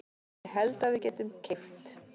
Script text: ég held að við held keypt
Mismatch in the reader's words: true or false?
true